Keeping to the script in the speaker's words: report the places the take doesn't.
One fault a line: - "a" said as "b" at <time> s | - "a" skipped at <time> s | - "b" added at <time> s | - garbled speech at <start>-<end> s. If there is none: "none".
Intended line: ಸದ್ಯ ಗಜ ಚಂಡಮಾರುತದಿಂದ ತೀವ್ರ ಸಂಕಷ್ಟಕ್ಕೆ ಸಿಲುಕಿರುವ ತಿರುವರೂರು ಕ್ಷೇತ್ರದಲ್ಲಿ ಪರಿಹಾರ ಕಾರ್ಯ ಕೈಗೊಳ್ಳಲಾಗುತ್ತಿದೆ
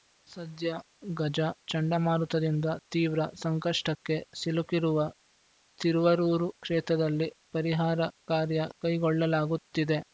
none